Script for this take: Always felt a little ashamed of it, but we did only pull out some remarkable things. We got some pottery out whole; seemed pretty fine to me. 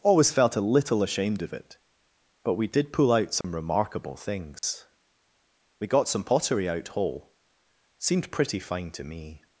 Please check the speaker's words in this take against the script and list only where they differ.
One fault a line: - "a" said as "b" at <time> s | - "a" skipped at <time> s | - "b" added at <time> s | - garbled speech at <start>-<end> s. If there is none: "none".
- "only" skipped at 2.9 s